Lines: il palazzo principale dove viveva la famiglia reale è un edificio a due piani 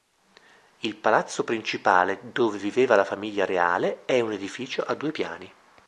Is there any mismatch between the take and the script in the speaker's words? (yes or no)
no